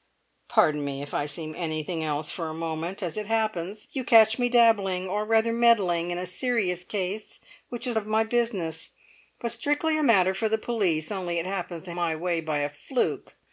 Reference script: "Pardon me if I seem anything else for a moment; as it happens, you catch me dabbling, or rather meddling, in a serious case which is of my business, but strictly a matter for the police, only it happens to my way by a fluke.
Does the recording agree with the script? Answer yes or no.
yes